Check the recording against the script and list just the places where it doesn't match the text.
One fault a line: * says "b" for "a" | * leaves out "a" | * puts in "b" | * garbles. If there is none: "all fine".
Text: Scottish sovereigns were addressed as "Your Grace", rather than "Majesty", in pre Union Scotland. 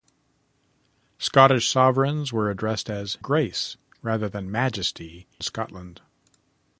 * leaves out "Your"
* leaves out "in pre Union"